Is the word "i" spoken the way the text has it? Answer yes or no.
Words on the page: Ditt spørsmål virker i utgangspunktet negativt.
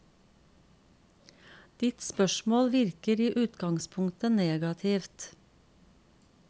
yes